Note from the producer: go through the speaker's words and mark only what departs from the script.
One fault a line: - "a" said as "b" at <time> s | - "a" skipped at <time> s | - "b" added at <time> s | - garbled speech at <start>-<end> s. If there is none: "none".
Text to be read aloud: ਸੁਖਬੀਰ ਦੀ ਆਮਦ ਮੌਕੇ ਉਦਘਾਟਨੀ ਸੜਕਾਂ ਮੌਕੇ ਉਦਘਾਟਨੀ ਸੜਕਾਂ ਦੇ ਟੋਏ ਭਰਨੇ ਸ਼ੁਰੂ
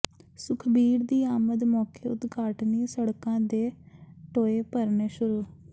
- "ਮੌਕੇ ਉਦਘਾਟਨੀ ਸੜਕਾਂ" skipped at 3.4 s